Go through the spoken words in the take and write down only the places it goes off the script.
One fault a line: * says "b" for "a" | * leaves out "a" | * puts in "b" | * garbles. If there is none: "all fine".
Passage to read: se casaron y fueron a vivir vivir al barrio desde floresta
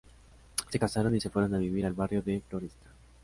* puts in "se"
* leaves out "vivir"
* says "de" for "desde"